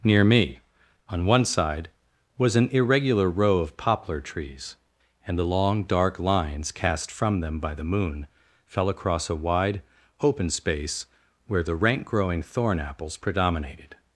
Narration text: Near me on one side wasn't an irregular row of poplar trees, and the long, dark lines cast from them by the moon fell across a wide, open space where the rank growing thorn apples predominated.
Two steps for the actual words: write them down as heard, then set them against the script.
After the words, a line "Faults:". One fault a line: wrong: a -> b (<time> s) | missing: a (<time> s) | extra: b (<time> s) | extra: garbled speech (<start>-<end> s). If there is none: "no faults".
Near me on one side was an irregular row of poplar trees, and the long, dark lines cast from them by the moon fell across a wide, open space where the rank growing thorn apples predominated.
Faults:
wrong: wasn't -> was (2.4 s)